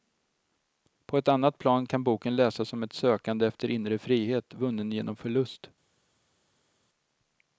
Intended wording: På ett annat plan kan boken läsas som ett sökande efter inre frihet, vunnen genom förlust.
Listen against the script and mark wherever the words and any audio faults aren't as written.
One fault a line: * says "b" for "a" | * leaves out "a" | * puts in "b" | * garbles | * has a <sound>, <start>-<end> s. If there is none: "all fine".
all fine